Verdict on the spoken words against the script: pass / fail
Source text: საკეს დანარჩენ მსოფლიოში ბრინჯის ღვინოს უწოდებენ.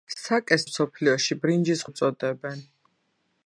fail